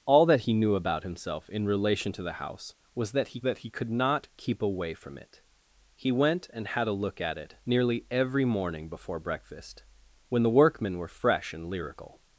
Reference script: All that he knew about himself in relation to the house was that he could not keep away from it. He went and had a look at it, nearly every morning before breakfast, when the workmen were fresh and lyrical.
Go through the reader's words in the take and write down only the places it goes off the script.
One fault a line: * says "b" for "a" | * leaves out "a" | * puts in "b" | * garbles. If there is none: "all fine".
* puts in "that he"